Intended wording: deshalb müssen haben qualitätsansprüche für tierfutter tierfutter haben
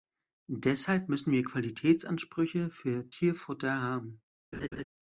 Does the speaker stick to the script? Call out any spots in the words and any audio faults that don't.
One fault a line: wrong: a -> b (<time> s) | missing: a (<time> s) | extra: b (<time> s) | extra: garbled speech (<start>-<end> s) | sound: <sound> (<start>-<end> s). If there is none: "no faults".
wrong: haben -> wir (1.3 s)
missing: tierfutter (3.8 s)
sound: laugh (4.5-4.8 s)